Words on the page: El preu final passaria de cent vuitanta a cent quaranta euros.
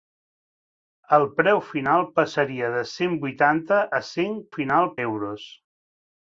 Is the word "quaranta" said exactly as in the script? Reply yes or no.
no